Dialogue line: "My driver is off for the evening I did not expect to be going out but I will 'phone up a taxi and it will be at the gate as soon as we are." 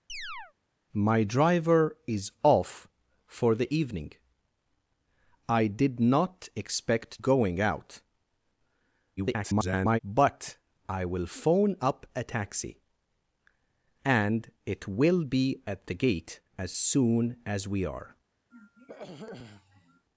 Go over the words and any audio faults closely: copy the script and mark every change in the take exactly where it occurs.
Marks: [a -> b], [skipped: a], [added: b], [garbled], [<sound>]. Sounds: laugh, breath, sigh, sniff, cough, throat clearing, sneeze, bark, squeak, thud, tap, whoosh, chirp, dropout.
[chirp] "My driver is off for the evening I did not expect [skipped: to be] going out [garbled] but I will 'phone up a taxi and it will be at the gate as soon as we are." [throat clearing]